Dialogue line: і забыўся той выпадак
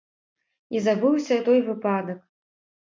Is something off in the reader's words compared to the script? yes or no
no